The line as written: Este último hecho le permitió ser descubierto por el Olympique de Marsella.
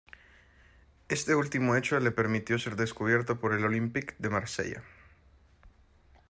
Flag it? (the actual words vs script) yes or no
no